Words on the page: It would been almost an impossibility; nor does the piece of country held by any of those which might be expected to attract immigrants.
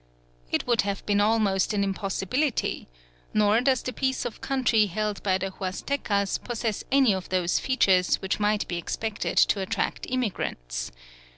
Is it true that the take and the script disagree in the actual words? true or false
true